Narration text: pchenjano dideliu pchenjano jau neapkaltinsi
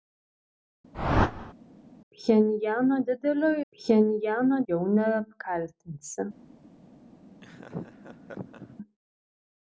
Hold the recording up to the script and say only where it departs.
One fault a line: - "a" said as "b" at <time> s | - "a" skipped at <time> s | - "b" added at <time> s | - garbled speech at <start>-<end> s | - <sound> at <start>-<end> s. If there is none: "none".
- whoosh at 0.9-1.5 s
- laugh at 7.4-8.8 s